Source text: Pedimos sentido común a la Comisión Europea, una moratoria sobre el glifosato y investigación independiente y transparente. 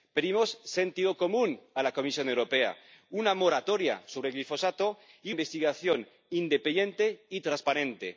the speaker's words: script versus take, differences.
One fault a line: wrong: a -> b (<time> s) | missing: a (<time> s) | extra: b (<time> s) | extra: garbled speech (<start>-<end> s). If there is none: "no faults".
no faults